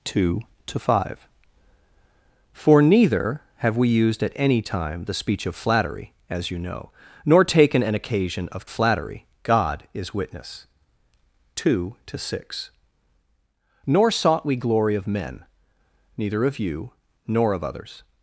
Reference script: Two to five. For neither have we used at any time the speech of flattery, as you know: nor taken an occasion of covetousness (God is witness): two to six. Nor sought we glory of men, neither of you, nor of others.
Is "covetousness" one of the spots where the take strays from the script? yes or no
yes